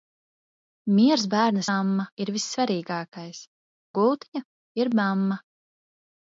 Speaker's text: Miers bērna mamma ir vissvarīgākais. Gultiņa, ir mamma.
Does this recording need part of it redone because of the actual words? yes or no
no